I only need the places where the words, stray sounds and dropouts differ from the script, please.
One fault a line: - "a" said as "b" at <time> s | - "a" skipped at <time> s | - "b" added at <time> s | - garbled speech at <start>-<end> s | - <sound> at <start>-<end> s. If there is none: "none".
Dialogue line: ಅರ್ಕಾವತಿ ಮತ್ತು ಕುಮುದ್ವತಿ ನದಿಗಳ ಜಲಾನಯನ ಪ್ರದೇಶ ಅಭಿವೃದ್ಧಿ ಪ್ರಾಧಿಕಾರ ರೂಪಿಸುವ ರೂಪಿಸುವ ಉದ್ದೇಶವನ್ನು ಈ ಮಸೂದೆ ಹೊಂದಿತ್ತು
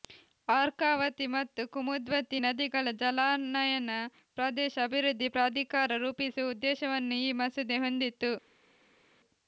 - "ರೂಪಿಸುವ" skipped at 6.5 s